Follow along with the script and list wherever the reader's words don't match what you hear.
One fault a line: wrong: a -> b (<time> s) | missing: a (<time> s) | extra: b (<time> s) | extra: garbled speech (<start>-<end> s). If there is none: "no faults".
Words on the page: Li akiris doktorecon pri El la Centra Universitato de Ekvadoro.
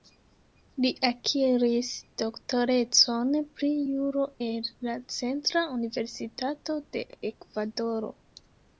extra: Juro (3.9 s)